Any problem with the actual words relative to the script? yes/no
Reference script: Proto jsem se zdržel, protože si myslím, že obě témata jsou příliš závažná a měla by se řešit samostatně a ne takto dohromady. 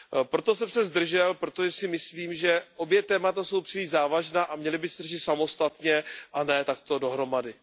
no